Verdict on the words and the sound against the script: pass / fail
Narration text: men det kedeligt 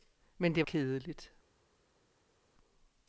pass